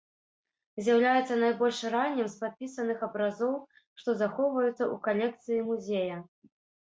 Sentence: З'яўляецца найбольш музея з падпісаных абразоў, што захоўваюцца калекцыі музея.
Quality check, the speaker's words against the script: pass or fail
fail